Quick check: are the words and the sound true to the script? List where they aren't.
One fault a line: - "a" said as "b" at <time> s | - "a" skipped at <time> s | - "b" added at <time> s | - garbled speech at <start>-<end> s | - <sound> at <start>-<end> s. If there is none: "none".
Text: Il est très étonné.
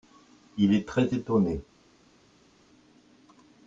none